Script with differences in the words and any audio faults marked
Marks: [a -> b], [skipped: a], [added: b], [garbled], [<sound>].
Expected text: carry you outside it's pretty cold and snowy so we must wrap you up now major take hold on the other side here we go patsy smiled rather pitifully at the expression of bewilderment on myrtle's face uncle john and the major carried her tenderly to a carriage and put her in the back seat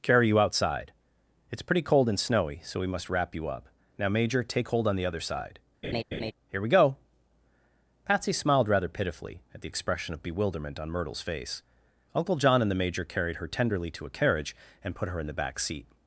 carry you outside it's pretty cold and snowy so we must wrap you up now major take hold on the other side [laugh] here we go patsy smiled rather pitifully at the expression of bewilderment on myrtle's face uncle john and the major carried her tenderly to a carriage and put her in the back seat